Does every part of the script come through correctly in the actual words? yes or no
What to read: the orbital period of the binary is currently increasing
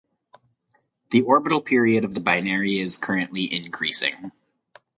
yes